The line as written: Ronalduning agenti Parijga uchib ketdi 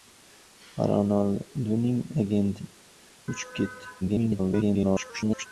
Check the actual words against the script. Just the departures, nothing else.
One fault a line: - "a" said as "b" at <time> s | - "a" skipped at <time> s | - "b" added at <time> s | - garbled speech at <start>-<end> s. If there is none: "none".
- "Parijga" skipped at 2.6 s
- garbled speech at 4.0-5.5 s